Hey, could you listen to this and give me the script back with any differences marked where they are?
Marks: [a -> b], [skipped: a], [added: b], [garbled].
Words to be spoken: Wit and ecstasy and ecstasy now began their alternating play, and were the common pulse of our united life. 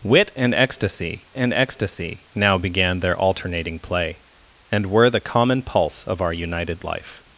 Wit and ecstasy and ecstasy now began their alternating play, and were the common pulse of our united life.